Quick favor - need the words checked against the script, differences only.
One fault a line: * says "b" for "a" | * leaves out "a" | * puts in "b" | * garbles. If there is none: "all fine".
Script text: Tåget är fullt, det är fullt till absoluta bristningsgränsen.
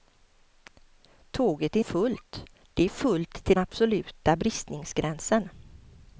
all fine